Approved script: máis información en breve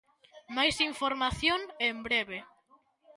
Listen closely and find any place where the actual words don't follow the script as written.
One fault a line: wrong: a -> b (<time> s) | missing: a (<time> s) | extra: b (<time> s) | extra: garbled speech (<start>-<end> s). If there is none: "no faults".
no faults